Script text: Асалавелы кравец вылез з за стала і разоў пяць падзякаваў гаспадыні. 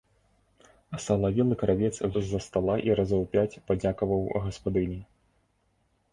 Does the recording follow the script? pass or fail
fail